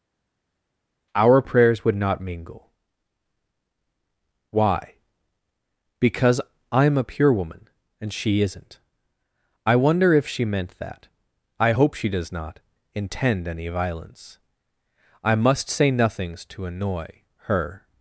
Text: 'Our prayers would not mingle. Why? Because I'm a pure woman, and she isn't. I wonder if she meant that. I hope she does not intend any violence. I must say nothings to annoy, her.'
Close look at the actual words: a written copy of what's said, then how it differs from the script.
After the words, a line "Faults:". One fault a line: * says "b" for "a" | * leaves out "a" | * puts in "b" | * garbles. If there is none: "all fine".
'Our prayers would not mingle. Why? Because I'm a pure woman, and she isn't. I wonder if she meant that. I hope she does not intend any violence. I must say nothings to annoy, her.'
Faults:
all fine